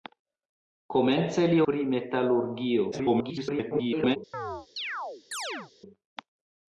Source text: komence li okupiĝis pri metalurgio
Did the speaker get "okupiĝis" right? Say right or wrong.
wrong